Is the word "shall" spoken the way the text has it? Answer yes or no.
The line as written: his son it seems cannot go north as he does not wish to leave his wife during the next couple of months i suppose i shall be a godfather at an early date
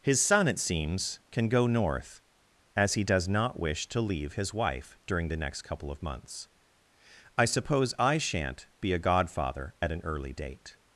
no